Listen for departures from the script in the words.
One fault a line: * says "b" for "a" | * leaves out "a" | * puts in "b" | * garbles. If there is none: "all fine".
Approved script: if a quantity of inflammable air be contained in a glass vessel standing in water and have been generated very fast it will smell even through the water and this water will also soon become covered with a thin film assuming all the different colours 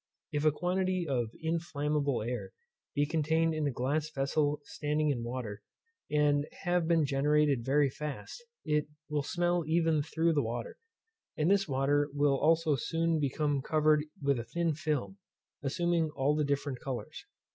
all fine